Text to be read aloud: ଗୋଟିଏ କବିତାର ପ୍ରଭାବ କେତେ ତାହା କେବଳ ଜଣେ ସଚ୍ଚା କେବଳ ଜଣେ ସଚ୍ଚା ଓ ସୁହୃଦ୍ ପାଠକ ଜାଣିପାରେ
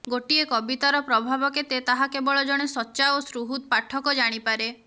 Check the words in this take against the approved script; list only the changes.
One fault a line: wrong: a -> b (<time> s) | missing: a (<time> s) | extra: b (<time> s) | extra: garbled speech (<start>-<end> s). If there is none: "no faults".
missing: କେବଳ ଜଣେ ସଚ୍ଚା (3.1 s)